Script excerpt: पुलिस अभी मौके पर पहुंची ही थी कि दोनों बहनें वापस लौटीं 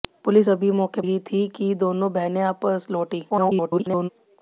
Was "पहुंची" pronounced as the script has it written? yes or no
no